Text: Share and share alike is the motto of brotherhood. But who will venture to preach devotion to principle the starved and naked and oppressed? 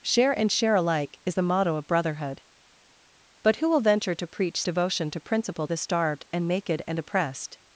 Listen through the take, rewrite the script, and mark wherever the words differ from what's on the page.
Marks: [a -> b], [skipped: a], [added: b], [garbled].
Share and share alike is the motto of brotherhood. But who will venture to preach devotion to principle the starved and naked and oppressed?